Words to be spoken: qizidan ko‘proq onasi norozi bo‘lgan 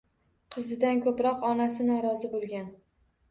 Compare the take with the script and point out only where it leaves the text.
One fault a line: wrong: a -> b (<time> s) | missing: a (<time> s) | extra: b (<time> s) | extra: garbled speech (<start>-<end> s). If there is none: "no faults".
no faults